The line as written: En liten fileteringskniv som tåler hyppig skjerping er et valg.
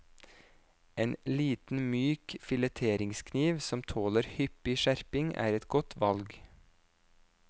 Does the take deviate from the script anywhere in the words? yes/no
yes